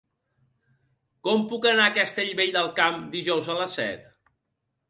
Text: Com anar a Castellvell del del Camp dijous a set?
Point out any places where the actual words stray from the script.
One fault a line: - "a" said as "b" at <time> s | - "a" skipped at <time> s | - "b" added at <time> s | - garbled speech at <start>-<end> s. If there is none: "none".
- "puc" added at 1.5 s
- "del" skipped at 2.7 s
- "les" added at 3.6 s